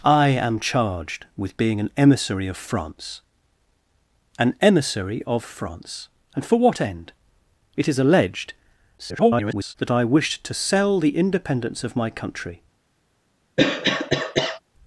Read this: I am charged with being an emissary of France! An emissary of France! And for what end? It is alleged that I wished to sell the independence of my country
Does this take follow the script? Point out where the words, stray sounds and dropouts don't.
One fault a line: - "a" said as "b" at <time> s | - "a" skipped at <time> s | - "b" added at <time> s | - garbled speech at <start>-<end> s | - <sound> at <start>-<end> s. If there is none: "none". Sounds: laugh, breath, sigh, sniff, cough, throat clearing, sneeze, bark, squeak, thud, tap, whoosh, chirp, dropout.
- garbled speech at 9.0-9.7 s
- cough at 13.6-14.6 s